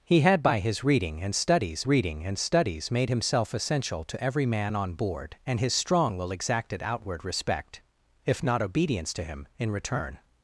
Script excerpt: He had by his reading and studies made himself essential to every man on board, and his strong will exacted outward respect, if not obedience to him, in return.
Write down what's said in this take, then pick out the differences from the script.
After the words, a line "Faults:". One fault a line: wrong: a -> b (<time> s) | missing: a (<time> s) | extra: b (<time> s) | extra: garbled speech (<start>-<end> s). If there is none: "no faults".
He had by his reading and studies reading and studies made himself essential to every man on board, and his strong will exacted outward respect, if not obedience to him, in return.
Faults:
extra: reading and studies (1.9 s)